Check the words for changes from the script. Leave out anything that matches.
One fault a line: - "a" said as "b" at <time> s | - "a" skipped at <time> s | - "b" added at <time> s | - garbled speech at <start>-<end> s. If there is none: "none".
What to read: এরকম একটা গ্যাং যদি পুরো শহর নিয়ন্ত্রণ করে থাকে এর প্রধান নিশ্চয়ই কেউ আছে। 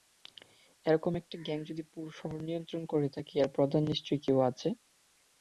none